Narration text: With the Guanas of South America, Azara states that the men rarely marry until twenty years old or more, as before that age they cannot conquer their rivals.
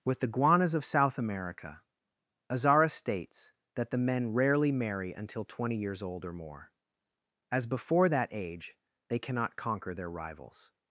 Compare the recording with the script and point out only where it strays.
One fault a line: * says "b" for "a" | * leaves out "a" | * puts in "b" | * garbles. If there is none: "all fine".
all fine